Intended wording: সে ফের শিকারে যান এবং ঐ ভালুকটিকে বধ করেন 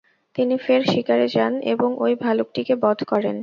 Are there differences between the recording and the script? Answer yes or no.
yes